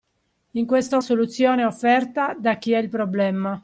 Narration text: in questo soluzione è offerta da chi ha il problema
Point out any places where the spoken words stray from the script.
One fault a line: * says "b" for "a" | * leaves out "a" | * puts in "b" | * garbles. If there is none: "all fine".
all fine